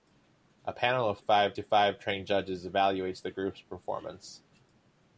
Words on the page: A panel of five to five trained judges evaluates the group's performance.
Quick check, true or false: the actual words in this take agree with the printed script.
true